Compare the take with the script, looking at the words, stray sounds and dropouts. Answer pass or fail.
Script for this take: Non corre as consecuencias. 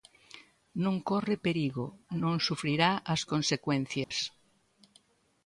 fail